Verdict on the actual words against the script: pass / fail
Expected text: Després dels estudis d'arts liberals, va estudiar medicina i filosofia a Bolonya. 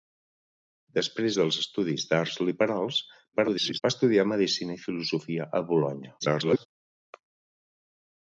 fail